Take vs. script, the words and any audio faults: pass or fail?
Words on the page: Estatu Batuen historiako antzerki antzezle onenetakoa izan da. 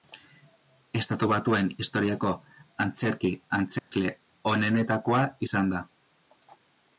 fail